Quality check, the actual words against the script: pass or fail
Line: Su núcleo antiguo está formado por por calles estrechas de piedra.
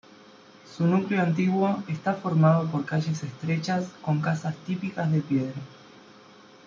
fail